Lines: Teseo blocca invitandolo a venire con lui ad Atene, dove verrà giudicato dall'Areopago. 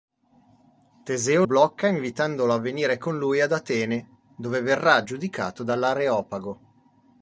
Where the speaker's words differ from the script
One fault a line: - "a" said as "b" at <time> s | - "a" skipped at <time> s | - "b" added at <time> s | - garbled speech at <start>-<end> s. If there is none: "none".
none